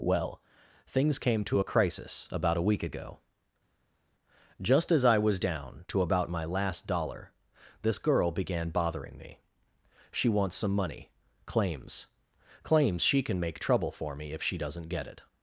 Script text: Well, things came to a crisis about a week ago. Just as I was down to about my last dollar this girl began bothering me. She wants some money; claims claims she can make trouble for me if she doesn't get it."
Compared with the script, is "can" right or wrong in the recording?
right